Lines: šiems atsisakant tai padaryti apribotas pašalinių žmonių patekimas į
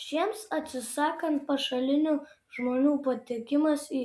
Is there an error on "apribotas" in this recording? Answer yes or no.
yes